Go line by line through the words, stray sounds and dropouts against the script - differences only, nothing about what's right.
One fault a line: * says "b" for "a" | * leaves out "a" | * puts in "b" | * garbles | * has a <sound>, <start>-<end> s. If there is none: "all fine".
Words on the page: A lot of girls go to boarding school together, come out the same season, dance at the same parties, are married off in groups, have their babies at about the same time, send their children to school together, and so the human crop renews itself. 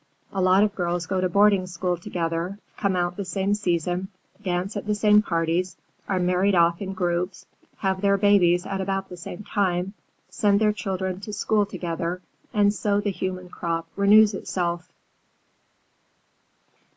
all fine